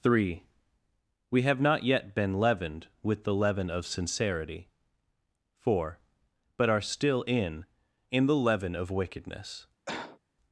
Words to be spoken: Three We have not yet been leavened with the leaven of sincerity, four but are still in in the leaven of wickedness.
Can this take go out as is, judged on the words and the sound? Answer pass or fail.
fail